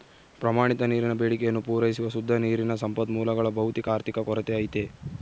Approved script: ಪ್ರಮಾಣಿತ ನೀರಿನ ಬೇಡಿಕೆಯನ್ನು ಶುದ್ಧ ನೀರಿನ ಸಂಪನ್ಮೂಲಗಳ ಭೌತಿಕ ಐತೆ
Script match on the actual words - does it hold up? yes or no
no